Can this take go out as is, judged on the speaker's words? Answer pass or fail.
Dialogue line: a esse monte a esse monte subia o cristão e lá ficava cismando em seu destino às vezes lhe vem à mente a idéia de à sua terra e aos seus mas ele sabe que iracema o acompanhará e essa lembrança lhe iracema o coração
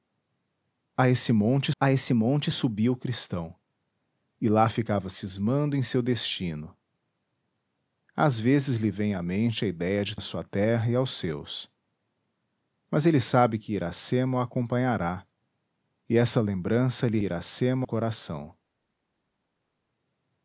pass